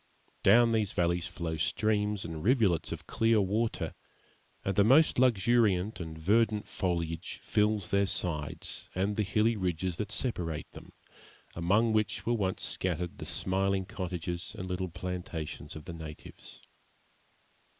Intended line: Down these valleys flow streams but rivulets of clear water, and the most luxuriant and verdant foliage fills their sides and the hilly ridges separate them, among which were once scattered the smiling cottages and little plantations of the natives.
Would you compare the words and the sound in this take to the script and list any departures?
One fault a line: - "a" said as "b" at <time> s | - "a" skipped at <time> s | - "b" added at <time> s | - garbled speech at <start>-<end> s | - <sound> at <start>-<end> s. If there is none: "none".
- "but" said as "and" at 2.2 s
- "that" added at 10.0 s